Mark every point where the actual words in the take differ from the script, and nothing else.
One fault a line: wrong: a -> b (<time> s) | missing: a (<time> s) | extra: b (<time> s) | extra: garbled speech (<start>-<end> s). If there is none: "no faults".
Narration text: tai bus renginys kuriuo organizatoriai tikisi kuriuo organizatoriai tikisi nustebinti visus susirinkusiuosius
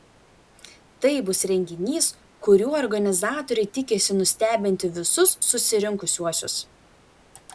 missing: kuriuo organizatoriai tikisi (4.2 s)